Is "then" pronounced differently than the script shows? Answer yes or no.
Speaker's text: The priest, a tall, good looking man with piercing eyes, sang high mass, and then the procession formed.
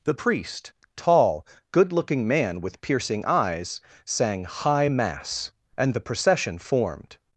yes